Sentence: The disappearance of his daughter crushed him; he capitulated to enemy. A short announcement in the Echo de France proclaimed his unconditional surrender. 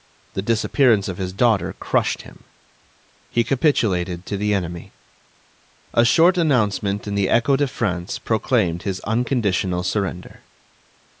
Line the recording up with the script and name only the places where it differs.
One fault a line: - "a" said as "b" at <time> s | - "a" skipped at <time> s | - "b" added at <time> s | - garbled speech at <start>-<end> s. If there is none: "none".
- "the" added at 4.4 s